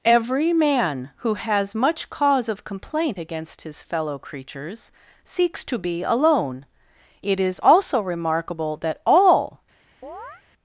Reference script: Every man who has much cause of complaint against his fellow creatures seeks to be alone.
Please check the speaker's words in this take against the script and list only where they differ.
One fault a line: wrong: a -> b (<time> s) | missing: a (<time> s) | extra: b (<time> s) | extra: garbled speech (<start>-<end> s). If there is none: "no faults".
extra: It is also remarkable that all (7.2 s)